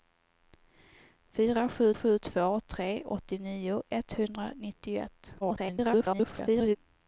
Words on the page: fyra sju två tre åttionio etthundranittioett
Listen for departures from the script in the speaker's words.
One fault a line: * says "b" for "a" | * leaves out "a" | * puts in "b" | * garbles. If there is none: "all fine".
* puts in "sju"
* garbles